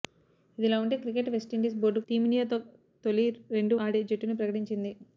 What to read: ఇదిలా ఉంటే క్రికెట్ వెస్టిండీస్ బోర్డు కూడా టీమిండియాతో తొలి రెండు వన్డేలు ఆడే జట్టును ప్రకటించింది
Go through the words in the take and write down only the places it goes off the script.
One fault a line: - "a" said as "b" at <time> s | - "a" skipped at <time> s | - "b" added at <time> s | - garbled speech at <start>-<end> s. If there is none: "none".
- "కూడా" skipped at 2.0 s
- "వన్డేలు" skipped at 3.8 s